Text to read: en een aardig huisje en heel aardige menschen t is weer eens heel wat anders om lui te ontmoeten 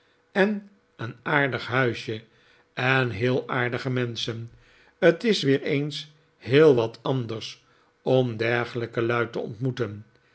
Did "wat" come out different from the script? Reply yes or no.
no